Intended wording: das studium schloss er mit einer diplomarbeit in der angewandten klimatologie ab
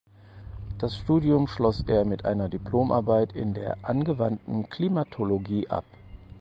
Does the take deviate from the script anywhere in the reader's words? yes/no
no